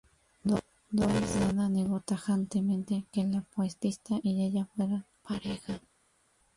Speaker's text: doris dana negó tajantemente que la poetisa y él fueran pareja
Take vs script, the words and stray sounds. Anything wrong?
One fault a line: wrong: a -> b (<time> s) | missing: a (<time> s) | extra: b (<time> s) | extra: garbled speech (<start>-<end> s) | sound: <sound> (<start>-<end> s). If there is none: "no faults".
wrong: él -> ella (4.5 s)